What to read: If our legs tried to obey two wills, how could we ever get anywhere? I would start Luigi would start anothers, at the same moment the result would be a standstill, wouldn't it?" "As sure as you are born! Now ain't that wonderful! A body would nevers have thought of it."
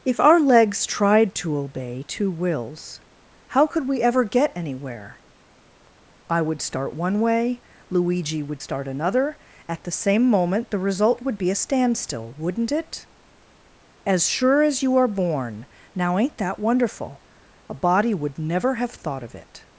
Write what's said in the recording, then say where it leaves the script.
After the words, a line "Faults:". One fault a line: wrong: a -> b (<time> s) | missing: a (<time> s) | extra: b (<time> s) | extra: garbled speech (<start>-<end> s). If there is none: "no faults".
If our legs tried to obey two wills, how could we ever get anywhere? I would start one way, Luigi would start another, at the same moment the result would be a standstill, wouldn't it?" "As sure as you are born! Now ain't that wonderful! A body would never have thought of it."
Faults:
extra: one way (7.0 s)
wrong: anothers -> another (8.9 s)
wrong: nevers -> never (18.4 s)